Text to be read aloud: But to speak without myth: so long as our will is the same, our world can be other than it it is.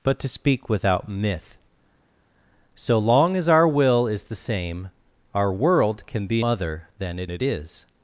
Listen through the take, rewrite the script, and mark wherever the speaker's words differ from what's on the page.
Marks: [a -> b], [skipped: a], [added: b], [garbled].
But to speak without myth: so long as our will is the same, our world can be other than it it is.